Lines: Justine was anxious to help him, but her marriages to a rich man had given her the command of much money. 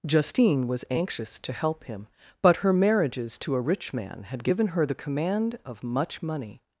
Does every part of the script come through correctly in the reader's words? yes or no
yes